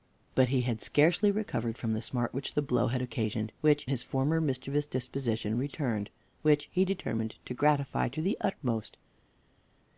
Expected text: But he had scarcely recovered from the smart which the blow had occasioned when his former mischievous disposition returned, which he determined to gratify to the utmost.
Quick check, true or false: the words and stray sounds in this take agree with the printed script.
false